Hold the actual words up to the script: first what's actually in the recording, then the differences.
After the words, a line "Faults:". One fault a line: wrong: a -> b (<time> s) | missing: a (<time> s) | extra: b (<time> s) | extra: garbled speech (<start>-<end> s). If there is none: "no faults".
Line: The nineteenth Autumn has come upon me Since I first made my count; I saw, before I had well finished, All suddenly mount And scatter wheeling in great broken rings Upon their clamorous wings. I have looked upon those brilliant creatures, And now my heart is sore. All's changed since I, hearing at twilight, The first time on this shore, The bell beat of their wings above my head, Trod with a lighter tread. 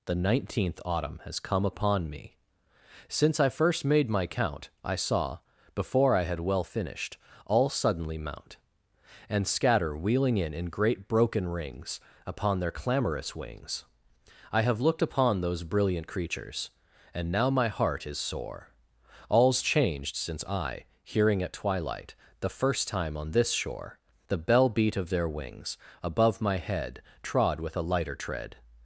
The nineteenth Autumn has come upon me Since I first made my count; I saw, before I had well finished, All suddenly mount And scatter wheeling in in great broken rings Upon their clamorous wings. I have looked upon those brilliant creatures, And now my heart is sore. All's changed since I, hearing at twilight, The first time on this shore, The bell beat of their wings above my head, Trod with a lighter tread.
Faults:
extra: in (10.6 s)